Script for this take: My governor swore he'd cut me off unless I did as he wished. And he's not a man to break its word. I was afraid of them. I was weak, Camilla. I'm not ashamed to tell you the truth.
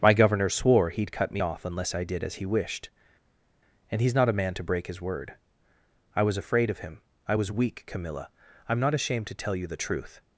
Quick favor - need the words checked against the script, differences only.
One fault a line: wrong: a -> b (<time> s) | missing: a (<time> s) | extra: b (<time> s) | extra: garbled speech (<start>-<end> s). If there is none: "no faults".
wrong: its -> his (4.9 s)
wrong: them -> him (6.8 s)